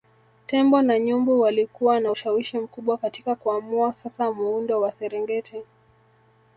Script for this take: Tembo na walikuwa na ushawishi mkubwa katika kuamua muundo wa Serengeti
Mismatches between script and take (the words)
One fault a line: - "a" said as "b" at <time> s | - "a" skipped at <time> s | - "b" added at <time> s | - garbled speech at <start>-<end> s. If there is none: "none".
- "nyumbu" added at 1.0 s
- "sasa" added at 3.9 s